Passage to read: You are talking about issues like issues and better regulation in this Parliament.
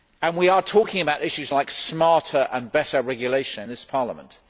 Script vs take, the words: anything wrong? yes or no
yes